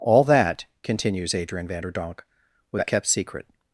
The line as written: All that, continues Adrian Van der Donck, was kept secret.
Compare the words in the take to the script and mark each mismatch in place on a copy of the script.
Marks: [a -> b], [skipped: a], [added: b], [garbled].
All that, continues Adrian Van der Donck, was kept secret.